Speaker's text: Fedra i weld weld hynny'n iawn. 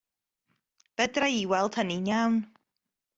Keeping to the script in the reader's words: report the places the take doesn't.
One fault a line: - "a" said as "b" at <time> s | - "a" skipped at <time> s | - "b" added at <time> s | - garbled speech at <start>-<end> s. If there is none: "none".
- "weld" skipped at 1.8 s